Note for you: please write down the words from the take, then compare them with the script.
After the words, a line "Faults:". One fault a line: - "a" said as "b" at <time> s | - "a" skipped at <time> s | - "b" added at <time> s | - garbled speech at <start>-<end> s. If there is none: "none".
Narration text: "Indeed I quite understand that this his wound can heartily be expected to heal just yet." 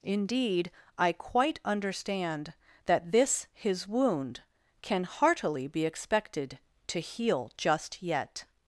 "Indeed I quite understand that this his wound can heartily be expected to heal just yet."
Faults:
none